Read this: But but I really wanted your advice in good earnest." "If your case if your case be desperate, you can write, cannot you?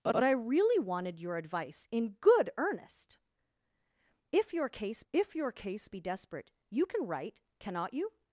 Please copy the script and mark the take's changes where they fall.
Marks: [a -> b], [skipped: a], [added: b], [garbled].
But but I really wanted your advice in good earnest." "If your case if your case be desperate, you can write, cannot you?